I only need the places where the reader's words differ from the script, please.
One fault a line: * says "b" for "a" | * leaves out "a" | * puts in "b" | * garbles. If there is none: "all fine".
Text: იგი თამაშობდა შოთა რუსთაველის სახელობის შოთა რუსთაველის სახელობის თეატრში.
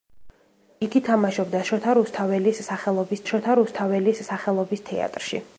all fine